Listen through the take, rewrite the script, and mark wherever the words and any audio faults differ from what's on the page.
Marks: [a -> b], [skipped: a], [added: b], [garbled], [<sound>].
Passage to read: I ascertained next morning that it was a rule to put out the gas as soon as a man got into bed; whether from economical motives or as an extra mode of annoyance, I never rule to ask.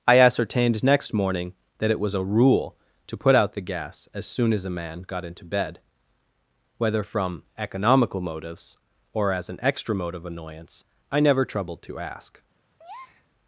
I ascertained next morning that it was a rule to put out the gas as soon as a man got into bed; whether from economical motives or as an extra mode of annoyance, I never [rule -> troubled] to ask. [breath]